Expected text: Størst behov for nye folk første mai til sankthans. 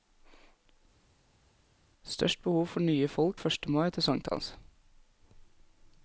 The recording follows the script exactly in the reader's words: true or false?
true